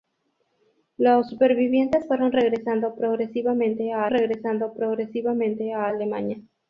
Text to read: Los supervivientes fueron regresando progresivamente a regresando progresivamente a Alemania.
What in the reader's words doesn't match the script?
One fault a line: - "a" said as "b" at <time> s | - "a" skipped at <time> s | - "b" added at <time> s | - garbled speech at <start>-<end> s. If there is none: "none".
none